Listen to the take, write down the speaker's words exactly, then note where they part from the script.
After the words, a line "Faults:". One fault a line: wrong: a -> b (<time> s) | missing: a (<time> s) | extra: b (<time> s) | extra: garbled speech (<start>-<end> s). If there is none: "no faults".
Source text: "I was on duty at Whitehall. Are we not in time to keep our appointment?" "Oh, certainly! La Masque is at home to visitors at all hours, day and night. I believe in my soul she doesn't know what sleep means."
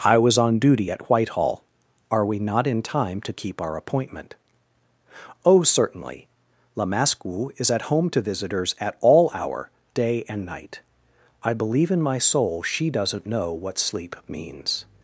"I was on duty at Whitehall. Are we not in time to keep our appointment?" "Oh, certainly! La Masque is at home to visitors at all hour, day and night. I believe in my soul she doesn't know what sleep means."
Faults:
wrong: hours -> hour (9.3 s)